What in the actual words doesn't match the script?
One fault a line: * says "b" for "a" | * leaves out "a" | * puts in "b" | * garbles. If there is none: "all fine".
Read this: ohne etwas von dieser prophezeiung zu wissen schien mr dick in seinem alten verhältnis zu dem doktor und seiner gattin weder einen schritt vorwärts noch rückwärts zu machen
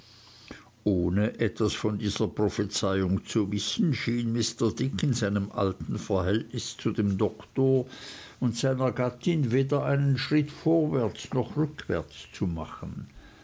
all fine